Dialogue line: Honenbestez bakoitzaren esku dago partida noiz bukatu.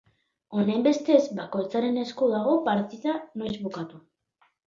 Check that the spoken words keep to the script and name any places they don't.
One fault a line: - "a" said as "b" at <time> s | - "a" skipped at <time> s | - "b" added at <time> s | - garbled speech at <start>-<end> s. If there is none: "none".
none